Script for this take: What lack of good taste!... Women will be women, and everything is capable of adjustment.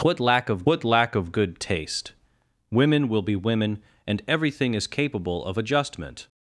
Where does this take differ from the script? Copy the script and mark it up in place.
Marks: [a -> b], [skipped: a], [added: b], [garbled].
What lack of [added: what lack of] good taste!... Women will be women, and everything is capable of adjustment.